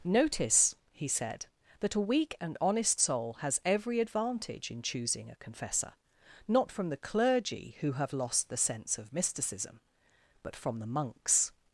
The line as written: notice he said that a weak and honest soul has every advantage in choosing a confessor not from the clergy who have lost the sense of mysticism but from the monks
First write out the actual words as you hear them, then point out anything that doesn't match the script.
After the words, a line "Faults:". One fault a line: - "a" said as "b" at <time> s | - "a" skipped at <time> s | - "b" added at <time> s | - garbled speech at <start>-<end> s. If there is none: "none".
notice he said that a weak and honest soul has every advantage in choosing a confessor not from the clergy who have lost the sense of mysticism but from the monks
Faults:
none